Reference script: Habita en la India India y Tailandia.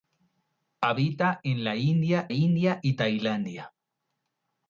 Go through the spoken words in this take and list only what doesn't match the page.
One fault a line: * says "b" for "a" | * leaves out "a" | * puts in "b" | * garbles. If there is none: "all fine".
all fine